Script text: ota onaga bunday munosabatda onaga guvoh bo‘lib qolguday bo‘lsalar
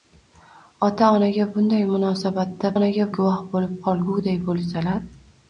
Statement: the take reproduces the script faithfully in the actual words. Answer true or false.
true